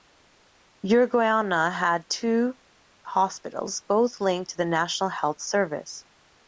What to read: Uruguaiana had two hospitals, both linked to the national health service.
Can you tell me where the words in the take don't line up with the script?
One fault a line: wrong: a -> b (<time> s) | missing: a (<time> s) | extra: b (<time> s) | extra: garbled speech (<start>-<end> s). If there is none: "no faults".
no faults